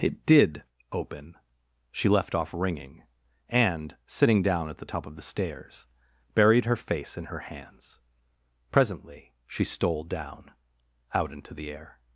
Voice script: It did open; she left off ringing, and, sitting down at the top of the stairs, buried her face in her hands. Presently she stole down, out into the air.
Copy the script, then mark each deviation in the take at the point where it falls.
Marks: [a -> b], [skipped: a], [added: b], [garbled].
It did open; she left off ringing, and, sitting down at the top of the stairs, buried her face in her hands. Presently she stole down, out into the air.